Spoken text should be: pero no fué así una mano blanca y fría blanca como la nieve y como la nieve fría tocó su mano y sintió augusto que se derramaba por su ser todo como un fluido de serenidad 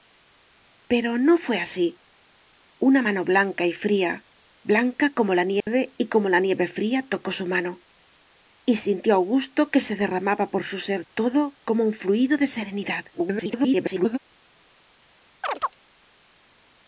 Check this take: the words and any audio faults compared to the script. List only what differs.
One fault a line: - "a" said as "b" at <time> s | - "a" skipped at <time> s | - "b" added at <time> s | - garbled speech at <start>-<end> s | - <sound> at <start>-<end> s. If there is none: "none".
- dropout at 5.6-5.7 s
- garbled speech at 13.1-14.2 s
- chirp at 15.4-15.7 s